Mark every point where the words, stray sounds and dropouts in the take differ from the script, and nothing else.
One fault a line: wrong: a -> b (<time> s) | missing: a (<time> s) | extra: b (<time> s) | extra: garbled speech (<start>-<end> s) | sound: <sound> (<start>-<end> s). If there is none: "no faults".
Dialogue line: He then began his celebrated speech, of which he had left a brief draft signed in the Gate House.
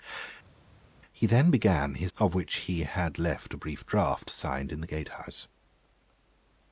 missing: celebrated speech (2.1 s)